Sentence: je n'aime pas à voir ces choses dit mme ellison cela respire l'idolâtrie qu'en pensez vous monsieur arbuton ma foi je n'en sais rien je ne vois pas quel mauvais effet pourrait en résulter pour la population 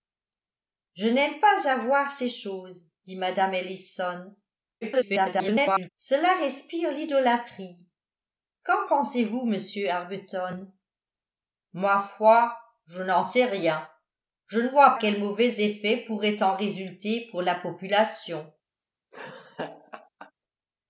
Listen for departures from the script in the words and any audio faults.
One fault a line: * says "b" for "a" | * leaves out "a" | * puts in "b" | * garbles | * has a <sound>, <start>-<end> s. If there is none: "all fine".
* garbles
* leaves out "pas"
* has a laugh, 19.1-20.3 s